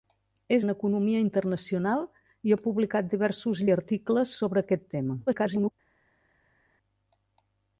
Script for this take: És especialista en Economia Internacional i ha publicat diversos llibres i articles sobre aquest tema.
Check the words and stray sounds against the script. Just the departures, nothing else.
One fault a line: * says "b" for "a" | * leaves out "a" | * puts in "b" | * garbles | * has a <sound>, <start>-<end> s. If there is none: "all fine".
* leaves out "especialista"
* leaves out "llibres"
* garbles